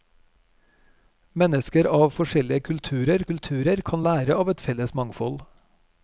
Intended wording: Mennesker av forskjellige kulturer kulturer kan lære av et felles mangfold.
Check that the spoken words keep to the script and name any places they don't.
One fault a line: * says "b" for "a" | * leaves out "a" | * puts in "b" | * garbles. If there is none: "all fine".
all fine